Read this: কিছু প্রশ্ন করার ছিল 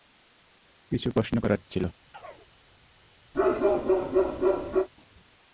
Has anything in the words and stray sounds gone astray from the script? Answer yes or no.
yes